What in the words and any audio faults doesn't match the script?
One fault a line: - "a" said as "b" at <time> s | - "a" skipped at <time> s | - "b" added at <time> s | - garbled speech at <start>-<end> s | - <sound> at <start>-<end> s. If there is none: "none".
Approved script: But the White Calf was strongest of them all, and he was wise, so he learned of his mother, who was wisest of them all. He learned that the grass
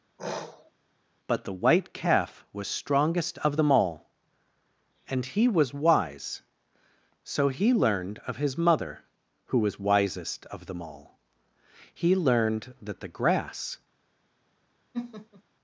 - sniff at 0.2-0.7 s
- laugh at 14.9-15.4 s